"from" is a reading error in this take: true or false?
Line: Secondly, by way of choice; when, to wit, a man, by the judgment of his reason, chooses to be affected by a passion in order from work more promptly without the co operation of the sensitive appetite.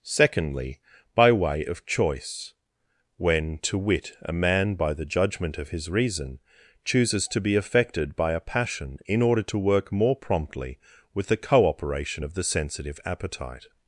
true